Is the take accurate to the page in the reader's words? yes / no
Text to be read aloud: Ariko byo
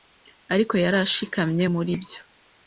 no